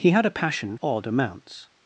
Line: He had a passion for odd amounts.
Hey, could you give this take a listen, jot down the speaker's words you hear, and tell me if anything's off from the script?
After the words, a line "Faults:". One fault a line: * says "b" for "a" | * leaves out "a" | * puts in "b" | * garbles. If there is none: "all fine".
He had a passion odd amounts.
Faults:
* leaves out "for"